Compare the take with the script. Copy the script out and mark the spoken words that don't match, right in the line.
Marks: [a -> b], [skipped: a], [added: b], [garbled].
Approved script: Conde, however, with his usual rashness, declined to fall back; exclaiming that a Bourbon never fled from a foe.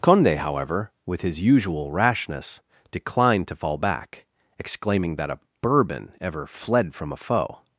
Conde, however, with his usual rashness, declined to fall back; exclaiming that a Bourbon [never -> ever] fled from a foe.